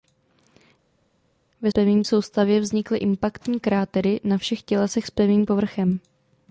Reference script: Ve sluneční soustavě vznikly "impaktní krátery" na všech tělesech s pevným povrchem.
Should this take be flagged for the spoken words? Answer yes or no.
yes